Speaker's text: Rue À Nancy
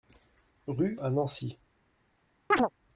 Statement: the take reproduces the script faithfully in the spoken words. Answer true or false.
true